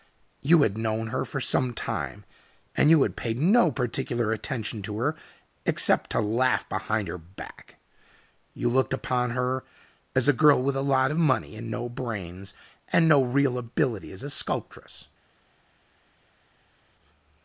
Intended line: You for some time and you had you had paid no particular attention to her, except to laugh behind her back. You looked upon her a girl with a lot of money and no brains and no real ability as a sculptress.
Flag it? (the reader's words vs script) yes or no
yes